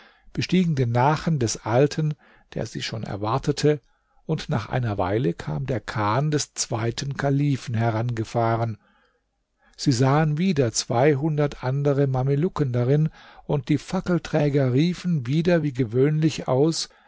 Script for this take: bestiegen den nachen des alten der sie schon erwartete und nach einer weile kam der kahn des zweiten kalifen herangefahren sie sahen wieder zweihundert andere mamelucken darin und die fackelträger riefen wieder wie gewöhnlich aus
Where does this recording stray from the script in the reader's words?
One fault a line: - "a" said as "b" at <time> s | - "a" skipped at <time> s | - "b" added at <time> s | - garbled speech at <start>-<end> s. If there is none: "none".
none